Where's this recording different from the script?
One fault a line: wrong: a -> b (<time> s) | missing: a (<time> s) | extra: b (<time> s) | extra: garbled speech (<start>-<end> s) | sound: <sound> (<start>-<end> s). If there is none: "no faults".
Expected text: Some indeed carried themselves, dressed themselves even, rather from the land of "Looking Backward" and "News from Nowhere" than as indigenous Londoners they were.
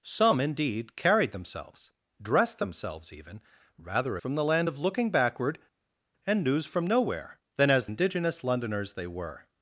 no faults